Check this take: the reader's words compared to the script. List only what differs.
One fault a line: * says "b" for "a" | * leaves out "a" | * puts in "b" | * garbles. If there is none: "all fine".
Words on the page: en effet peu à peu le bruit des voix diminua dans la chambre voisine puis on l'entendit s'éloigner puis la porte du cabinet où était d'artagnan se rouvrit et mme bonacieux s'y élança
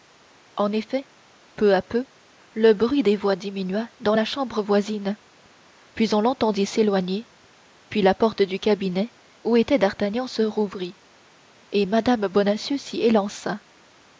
all fine